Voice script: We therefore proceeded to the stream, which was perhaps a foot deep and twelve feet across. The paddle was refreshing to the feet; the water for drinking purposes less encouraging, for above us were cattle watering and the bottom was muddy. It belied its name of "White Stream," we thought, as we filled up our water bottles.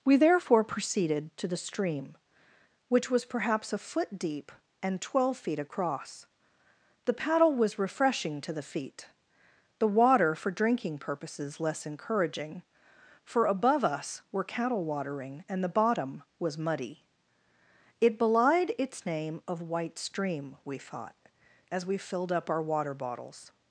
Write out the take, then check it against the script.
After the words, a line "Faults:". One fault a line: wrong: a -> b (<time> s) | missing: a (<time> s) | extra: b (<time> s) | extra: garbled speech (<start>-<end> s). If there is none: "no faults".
We therefore proceeded to the stream, which was perhaps a foot deep and twelve feet across. The paddle was refreshing to the feet; the water for drinking purposes less encouraging, for above us were cattle watering and the bottom was muddy. It belied its name of "White Stream," we thought, as we filled up our water bottles.
Faults:
no faults